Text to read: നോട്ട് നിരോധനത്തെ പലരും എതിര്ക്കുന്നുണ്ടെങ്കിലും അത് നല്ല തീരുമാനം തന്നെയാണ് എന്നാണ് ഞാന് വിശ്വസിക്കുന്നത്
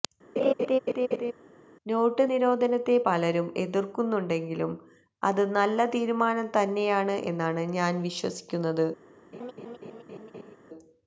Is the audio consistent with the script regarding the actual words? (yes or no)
yes